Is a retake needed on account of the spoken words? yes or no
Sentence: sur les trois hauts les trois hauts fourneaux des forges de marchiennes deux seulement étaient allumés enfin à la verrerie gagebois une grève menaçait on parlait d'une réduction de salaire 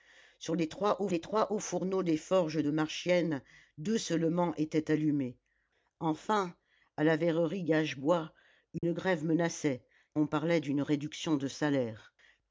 no